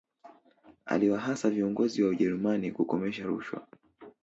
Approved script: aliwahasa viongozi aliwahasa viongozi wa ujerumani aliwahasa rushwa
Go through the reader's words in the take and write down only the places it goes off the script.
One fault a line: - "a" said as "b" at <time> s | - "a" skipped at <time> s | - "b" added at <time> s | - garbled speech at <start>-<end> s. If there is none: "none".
- "aliwahasa viongozi" skipped at 2.0 s
- "aliwahasa" said as "kukomesha" at 2.7 s